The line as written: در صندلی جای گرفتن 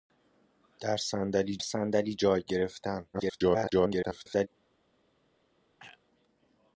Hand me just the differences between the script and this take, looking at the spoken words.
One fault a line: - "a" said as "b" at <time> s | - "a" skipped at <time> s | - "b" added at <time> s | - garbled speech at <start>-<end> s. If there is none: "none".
- "صندلی" added at 1.6 s
- garbled speech at 3.1-4.5 s